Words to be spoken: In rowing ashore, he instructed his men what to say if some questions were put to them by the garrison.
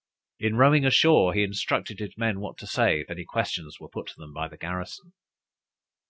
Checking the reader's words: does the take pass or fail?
fail